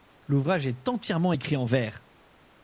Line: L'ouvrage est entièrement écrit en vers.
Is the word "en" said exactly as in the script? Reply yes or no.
yes